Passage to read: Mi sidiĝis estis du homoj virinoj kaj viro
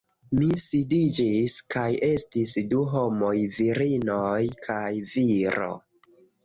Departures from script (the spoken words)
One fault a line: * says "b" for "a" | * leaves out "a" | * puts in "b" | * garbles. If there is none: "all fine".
* puts in "kaj"